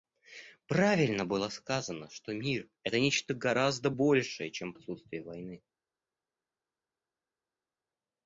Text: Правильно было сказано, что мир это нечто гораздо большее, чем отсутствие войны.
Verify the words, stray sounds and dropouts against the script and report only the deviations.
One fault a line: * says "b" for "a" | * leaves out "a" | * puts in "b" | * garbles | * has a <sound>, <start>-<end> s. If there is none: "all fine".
all fine